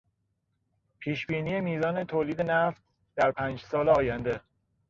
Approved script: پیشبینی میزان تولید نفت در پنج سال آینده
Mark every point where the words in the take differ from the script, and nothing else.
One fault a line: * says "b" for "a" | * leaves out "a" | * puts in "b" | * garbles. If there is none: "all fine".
all fine